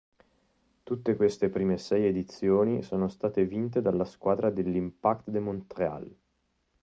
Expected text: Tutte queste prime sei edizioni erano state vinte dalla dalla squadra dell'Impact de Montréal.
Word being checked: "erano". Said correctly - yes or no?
no